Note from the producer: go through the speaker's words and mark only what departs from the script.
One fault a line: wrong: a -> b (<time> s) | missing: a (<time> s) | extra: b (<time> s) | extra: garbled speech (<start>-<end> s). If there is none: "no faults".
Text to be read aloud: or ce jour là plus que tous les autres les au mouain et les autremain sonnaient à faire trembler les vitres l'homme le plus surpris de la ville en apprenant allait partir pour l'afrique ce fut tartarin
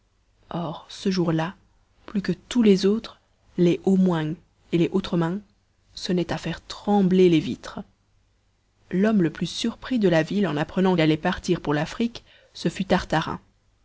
no faults